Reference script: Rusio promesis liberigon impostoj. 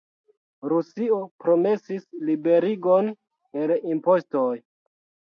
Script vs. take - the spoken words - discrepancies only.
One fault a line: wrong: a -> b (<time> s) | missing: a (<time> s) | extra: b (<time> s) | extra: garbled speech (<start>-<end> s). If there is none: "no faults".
extra: el (3.6 s)